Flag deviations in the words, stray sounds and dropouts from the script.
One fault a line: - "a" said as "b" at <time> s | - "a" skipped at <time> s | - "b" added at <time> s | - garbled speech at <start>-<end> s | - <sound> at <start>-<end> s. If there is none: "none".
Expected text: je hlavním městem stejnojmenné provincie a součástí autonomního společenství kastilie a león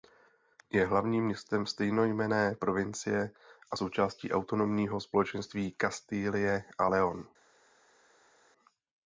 none